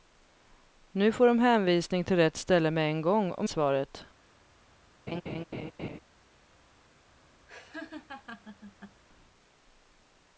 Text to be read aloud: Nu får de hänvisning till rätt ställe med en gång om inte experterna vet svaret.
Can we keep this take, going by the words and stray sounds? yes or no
no